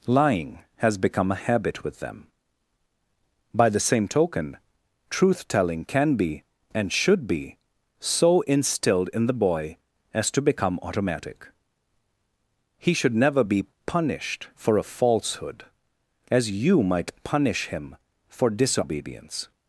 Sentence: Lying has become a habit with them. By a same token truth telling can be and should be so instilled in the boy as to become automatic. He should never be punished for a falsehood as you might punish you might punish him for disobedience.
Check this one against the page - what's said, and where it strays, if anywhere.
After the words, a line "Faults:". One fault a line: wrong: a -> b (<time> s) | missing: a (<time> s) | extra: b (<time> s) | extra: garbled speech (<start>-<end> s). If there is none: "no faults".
Lying has become a habit with them. By the same token truth telling can be and should be so instilled in the boy as to become automatic. He should never be punished for a falsehood as you might punish him for disobedience.
Faults:
wrong: a -> the (3.7 s)
missing: you might punish (17.7 s)